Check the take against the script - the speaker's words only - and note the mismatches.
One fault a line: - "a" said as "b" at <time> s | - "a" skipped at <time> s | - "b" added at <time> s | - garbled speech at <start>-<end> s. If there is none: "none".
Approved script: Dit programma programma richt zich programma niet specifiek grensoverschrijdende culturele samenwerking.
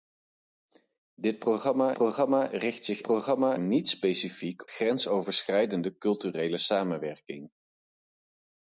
none